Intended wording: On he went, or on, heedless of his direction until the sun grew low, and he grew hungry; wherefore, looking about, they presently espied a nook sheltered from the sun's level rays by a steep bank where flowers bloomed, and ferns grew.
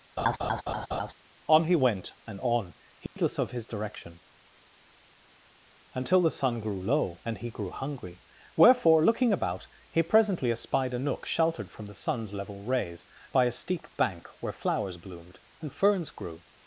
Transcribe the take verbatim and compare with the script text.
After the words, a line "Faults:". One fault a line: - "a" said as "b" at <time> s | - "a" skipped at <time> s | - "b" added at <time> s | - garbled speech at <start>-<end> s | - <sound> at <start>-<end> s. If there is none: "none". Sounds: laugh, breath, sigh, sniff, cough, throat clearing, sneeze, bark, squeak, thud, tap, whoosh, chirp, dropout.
On he went, and on, heedless of his direction until the sun grew low, and he grew hungry; wherefore, looking about, he presently espied a nook sheltered from the sun's level rays by a steep bank where flowers bloomed, and ferns grew.
Faults:
- laugh at 0.2-1.1 s
- "or" said as "and" at 2.3 s
- dropout at 3.1-3.2 s
- "they" said as "he" at 9.9 s